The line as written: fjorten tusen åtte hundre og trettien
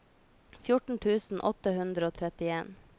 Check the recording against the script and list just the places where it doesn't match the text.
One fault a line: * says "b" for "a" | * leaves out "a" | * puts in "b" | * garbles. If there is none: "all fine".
all fine